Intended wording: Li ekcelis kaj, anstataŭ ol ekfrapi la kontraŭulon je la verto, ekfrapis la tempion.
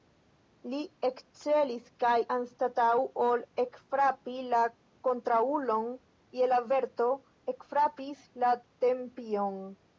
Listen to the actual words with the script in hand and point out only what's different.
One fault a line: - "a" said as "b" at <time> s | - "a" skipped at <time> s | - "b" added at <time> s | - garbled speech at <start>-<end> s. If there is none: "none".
none